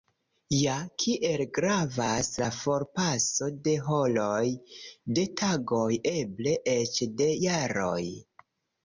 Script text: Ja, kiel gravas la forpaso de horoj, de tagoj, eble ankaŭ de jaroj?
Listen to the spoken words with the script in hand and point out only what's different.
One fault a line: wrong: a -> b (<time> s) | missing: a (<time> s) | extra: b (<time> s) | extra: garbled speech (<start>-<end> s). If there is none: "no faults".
wrong: ankaŭ -> eĉ (6.7 s)